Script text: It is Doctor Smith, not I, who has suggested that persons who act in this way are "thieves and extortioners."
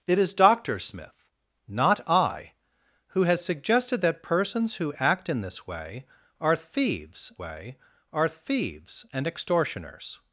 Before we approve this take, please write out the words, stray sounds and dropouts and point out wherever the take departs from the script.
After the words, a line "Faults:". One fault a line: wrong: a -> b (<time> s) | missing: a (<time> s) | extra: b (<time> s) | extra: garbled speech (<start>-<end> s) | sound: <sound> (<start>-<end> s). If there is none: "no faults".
It is Doctor Smith, not I, who has suggested that persons who act in this way are "thieves way are thieves and extortioners."
Faults:
extra: way are thieves (7.4 s)